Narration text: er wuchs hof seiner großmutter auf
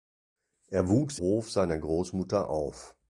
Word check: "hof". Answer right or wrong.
right